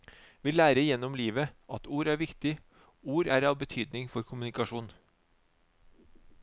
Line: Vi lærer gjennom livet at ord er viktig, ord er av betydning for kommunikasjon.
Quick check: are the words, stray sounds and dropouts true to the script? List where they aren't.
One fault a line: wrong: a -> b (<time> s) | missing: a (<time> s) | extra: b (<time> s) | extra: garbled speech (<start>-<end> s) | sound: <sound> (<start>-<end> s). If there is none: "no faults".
no faults